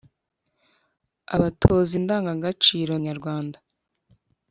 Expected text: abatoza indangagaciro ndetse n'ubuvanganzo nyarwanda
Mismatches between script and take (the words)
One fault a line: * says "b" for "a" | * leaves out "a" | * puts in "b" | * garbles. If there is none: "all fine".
* leaves out "ndetse n'ubuvanganzo"